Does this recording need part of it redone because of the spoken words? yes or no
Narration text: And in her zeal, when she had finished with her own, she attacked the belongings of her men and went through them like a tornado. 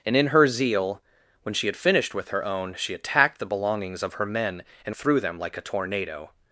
yes